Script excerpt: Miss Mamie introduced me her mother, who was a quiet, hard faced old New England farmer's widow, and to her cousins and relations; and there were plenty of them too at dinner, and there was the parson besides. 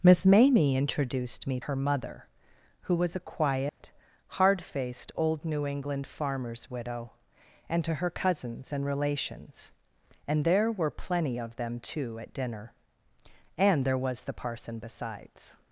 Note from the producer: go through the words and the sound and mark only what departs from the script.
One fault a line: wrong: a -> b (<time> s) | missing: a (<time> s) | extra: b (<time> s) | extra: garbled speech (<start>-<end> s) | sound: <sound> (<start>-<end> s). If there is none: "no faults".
sound: dropout (3.7-3.8 s)